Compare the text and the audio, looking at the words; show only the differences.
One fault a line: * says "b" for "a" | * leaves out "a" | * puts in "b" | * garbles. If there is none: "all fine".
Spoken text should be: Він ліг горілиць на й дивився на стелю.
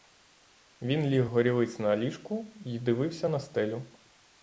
* puts in "ліжку"